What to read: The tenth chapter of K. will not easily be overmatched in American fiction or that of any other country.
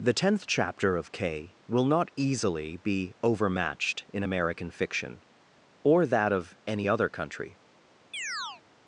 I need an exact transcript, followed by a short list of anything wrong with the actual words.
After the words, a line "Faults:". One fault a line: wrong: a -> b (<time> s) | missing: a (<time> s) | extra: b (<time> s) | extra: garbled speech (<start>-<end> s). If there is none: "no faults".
The tenth chapter of K. will not easily be overmatched in American fiction or that of any other country.
Faults:
no faults